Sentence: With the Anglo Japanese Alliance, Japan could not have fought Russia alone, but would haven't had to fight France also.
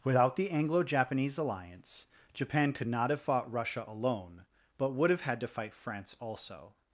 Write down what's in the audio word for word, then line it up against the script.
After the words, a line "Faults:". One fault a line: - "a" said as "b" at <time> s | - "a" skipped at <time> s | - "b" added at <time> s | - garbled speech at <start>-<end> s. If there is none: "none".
Without the Anglo Japanese Alliance, Japan could not have fought Russia alone, but would have had to fight France also.
Faults:
- "With" said as "Without" at 0.0 s
- "haven't" said as "have" at 5.1 s